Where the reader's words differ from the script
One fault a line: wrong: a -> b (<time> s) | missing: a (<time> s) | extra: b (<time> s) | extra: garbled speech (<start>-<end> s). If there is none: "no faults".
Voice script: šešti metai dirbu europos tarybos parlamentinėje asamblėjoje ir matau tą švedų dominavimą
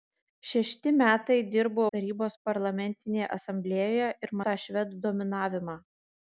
missing: europos (1.8 s)
missing: matau (4.4 s)